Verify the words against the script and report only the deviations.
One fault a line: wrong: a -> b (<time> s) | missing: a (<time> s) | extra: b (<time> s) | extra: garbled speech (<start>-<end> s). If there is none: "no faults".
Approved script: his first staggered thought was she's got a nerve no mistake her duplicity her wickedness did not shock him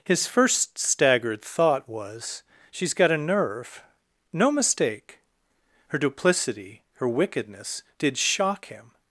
missing: not (8.2 s)